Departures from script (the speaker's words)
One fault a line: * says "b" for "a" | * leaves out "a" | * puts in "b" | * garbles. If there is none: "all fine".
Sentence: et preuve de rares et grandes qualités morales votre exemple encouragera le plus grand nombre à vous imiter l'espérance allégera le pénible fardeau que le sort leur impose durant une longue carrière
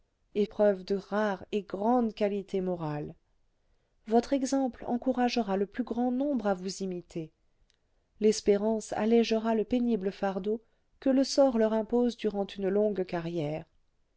all fine